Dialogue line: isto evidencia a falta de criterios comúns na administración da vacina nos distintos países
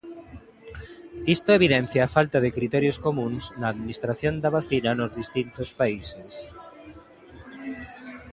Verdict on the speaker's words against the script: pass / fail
pass